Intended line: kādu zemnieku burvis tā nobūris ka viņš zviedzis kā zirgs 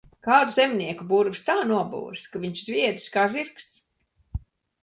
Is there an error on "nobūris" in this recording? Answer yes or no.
no